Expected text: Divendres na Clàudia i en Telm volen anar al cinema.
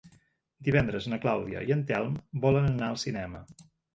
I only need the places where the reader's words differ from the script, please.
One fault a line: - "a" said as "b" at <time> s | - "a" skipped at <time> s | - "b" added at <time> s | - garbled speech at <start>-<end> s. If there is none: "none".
none